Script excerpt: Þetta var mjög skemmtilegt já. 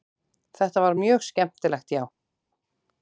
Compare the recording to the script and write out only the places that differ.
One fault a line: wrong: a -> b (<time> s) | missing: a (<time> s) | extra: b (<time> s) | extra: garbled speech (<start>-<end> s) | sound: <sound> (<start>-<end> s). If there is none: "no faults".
no faults